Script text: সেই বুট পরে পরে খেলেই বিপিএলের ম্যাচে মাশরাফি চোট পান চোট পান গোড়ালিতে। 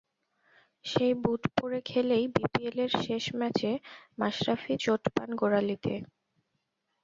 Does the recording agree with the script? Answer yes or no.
no